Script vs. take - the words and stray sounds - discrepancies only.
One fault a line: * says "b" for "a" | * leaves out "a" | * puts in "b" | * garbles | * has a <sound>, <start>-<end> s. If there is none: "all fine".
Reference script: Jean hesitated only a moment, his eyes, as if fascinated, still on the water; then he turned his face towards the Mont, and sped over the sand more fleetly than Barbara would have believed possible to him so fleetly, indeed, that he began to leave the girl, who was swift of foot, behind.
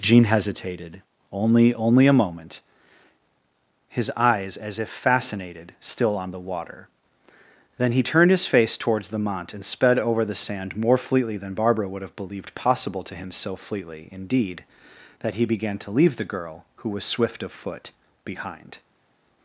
* puts in "only"